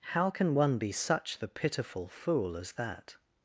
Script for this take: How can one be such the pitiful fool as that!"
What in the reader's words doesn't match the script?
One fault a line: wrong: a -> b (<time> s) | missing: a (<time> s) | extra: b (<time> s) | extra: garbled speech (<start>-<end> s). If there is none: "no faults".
no faults